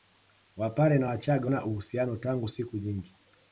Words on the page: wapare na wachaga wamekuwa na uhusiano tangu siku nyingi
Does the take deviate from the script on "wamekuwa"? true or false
true